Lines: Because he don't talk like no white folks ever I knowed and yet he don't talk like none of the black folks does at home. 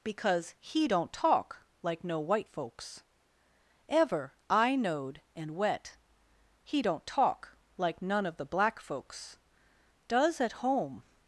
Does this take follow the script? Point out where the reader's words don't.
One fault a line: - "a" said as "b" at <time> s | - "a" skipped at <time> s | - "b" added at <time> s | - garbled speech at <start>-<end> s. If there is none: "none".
- "yet" said as "wet" at 5.6 s